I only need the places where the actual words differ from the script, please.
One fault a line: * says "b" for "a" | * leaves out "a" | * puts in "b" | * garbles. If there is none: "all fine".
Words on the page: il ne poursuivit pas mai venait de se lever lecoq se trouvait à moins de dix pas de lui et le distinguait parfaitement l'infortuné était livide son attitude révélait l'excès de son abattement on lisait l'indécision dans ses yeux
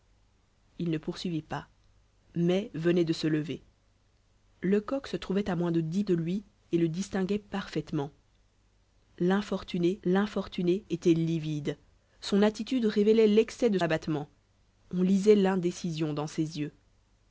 * leaves out "pas"
* puts in "l'infortuné"
* leaves out "son"